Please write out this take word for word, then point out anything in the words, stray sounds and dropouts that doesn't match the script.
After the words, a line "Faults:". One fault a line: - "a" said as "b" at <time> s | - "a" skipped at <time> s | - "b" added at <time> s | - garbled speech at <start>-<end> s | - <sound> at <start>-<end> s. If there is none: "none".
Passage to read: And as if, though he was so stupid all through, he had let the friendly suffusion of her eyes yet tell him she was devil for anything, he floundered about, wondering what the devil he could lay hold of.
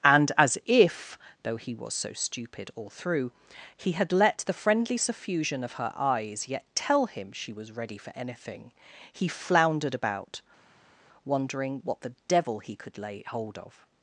And as if, though he was so stupid all through, he had let the friendly suffusion of her eyes yet tell him she was ready for anything, he floundered about, wondering what the devil he could lay hold of.
Faults:
- "devil" said as "ready" at 7.7 s